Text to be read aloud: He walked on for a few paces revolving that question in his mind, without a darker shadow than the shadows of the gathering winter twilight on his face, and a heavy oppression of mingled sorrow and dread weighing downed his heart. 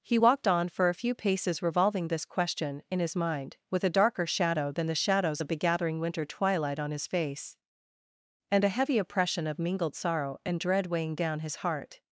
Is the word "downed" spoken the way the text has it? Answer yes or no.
no